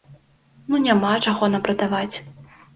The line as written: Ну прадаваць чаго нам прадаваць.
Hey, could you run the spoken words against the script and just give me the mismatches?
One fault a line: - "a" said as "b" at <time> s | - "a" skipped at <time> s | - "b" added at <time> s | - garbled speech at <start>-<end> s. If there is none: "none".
- "прадаваць" said as "няма" at 0.9 s